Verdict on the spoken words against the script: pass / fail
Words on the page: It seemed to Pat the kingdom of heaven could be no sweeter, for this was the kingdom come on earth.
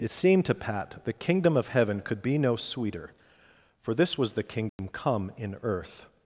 fail